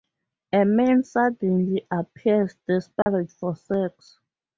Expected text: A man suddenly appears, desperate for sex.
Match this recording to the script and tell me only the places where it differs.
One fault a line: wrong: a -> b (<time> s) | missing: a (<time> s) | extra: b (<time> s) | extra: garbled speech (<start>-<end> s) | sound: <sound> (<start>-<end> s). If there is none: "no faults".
sound: dropout (3.0-3.1 s)